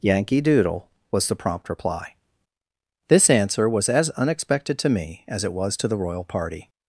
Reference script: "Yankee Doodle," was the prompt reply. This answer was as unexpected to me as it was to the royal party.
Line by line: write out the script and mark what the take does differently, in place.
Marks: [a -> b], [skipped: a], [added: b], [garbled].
"Yankee Doodle," was the prompt reply. This answer was as unexpected to me as it was to the royal party.